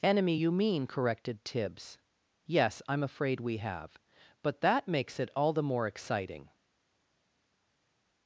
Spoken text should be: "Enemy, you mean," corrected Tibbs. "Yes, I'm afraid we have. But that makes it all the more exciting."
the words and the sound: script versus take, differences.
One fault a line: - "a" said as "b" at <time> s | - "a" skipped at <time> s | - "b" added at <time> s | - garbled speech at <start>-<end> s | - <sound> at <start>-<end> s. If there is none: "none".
none